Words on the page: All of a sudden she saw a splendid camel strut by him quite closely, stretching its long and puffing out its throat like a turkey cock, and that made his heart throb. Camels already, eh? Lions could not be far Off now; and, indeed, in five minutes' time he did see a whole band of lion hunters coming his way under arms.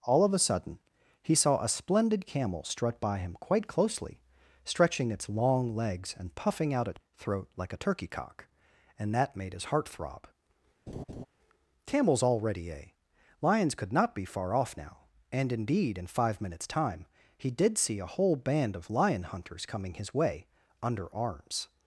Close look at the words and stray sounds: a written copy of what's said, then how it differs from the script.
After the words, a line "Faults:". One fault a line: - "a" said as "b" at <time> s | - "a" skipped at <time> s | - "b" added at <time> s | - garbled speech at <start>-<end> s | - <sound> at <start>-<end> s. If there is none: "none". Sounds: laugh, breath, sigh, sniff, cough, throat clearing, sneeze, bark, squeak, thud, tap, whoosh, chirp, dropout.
All of a sudden he saw a splendid camel strut by him quite closely, stretching its long legs and puffing out its throat like a turkey cock, and that made his heart throb. Camels already, eh? Lions could not be far Off now; and, indeed, in five minutes' time he did see a whole band of lion hunters coming his way under arms.
Faults:
- "she" said as "he" at 1.2 s
- "legs" added at 5.8 s
- laugh at 10.9-11.3 s